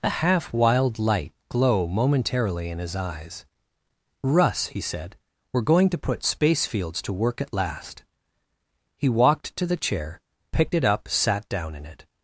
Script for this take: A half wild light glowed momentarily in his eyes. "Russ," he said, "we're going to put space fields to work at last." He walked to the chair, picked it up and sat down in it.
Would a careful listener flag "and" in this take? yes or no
yes